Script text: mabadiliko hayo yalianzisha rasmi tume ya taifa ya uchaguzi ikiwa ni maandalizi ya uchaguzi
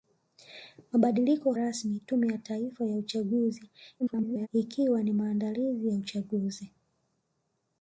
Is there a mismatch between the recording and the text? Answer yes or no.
yes